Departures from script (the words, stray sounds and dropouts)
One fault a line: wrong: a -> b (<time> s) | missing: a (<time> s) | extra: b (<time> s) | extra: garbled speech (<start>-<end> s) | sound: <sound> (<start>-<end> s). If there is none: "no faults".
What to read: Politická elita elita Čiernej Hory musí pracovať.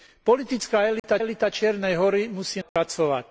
sound: dropout (1.0-1.0 s)
sound: dropout (2.7-2.8 s)